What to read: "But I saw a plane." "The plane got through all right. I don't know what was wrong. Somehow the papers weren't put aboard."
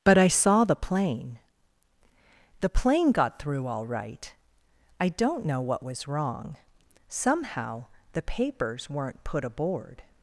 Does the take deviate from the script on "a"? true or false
true